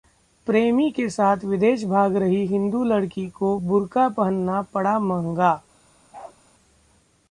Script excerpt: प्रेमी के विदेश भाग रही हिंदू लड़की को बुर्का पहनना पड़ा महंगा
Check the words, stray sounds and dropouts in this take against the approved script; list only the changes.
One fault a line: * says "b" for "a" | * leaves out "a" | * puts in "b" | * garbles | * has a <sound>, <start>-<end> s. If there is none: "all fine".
* puts in "साथ"
* has a bark, 6.1-6.4 s